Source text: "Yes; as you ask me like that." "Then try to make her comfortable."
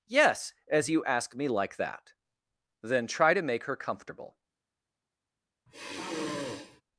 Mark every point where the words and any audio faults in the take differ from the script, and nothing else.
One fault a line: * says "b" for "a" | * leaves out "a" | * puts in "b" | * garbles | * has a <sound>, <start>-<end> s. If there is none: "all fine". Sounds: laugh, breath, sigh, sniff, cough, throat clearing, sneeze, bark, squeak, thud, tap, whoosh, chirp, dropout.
* has a sigh, 5.7-6.8 s